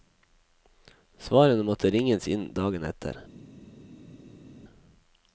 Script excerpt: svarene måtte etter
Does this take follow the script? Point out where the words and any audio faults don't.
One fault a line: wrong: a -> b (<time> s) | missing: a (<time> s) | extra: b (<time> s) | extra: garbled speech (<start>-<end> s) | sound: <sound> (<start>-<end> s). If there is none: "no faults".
extra: ringes inn dagen (1.9 s)